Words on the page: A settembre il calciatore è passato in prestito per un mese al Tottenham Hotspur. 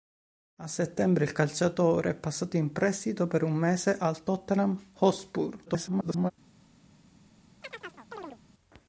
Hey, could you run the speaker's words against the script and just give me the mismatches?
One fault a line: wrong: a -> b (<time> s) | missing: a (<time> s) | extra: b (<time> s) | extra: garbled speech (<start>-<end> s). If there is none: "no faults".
extra: garbled speech (5.7-6.3 s)